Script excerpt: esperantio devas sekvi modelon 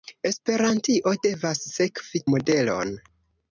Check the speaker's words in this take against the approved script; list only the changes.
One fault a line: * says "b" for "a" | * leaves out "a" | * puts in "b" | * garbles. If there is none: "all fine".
all fine